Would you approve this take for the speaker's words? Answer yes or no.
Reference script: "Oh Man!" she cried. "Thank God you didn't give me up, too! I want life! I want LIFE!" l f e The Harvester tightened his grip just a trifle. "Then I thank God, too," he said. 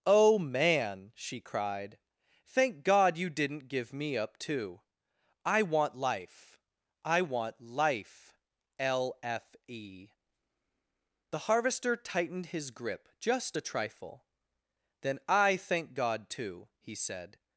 yes